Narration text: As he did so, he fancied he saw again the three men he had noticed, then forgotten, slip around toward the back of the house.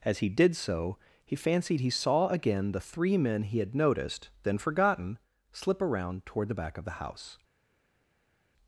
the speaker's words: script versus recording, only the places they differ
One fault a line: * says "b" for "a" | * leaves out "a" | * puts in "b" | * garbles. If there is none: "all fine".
all fine